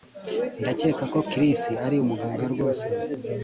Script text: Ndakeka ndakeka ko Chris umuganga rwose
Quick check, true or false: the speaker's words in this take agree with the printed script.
false